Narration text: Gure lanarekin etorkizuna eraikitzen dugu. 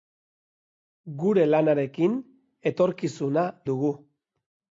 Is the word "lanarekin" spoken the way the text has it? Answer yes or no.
yes